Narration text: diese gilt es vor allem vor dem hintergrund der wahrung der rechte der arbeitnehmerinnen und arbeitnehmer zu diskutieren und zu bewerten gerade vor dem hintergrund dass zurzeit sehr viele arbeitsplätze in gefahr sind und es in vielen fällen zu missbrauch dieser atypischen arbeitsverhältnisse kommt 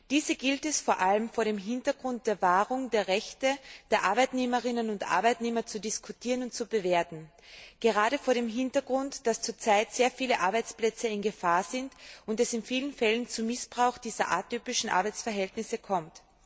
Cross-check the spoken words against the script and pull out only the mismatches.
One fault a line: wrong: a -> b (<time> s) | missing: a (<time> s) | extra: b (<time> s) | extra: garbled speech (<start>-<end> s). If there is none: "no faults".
no faults